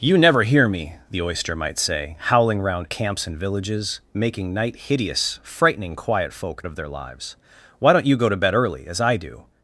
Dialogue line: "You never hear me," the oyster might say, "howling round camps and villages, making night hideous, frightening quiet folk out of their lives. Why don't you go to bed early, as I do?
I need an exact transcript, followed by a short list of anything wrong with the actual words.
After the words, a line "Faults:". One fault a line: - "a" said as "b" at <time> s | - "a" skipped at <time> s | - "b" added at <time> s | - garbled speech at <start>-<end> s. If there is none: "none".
"You never hear me," the oyster might say, "howling round camps and villages, making night hideous, frightening quiet folk of their lives. Why don't you go to bed early, as I do?
Faults:
- "out" skipped at 6.6 s